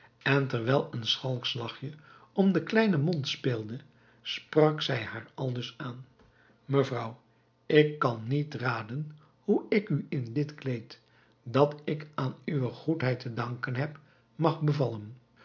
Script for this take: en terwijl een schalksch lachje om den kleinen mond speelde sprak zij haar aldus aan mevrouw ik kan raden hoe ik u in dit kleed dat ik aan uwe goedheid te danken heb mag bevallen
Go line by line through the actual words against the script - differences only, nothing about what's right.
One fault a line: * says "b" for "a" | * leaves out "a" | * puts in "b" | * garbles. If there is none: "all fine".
* puts in "niet"